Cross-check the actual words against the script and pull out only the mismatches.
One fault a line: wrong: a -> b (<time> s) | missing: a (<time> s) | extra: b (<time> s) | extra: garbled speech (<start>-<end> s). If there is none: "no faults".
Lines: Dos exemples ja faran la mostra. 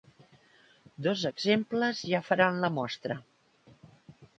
no faults